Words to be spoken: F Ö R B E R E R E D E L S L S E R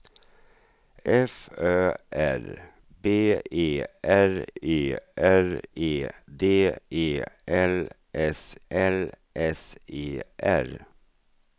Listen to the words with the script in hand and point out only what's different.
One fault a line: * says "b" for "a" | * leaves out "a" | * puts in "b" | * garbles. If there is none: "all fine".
all fine